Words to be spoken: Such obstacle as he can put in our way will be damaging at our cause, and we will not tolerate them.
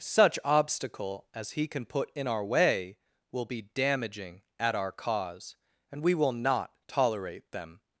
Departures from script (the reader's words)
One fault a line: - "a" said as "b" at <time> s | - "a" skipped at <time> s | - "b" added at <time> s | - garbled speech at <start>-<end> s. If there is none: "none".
none